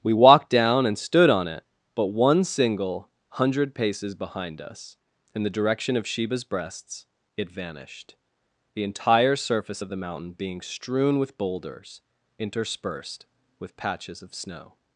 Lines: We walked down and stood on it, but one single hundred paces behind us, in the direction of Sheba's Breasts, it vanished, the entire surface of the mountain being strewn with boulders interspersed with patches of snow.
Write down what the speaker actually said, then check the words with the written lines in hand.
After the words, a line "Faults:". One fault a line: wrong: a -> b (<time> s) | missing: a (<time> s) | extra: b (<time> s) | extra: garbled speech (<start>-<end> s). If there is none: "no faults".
We walked down and stood on it, but one single hundred paces behind us, in the direction of Sheba's Breasts, it vanished, the entire surface of the mountain being strewn with boulders interspersed with patches of snow.
Faults:
no faults